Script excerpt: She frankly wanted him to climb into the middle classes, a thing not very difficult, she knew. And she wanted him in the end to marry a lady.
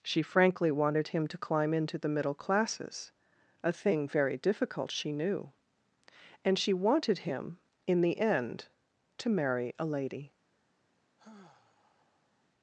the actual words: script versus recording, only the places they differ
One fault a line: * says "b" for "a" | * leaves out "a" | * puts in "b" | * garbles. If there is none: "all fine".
* leaves out "not"